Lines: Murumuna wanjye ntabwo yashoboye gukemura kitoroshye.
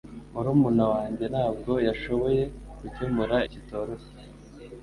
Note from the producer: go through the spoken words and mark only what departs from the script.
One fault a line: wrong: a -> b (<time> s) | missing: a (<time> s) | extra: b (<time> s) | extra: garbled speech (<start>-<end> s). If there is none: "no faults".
no faults